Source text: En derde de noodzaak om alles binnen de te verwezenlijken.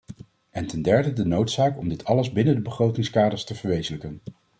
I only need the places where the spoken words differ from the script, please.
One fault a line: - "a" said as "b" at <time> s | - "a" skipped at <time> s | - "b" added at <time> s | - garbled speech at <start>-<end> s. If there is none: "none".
- "ten" added at 0.7 s
- "dit" added at 1.9 s
- "begrotingskaders" added at 2.6 s